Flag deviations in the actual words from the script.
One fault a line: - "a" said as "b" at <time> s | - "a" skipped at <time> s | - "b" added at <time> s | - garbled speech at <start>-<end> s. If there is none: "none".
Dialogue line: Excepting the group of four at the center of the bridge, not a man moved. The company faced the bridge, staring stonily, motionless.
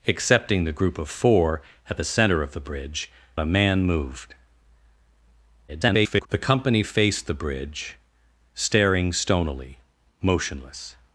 - "not" skipped at 3.1 s
- garbled speech at 5.7-6.3 s